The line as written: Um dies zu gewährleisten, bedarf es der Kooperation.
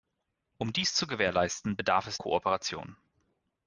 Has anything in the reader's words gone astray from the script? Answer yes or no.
yes